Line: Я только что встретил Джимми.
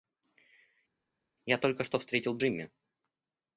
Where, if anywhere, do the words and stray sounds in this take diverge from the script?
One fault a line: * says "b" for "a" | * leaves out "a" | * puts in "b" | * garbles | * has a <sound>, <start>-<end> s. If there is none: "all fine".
all fine